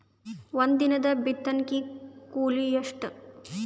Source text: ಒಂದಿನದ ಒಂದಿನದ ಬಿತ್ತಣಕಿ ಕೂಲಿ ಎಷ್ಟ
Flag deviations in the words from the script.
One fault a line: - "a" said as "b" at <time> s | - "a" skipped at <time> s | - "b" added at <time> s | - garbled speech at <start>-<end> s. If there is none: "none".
- "ಒಂದಿನದ" skipped at 1.1 s